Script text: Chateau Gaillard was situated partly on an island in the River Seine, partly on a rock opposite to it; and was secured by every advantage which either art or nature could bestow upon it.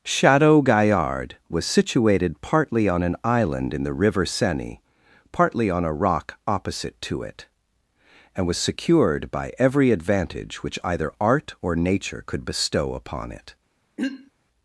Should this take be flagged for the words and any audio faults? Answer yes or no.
yes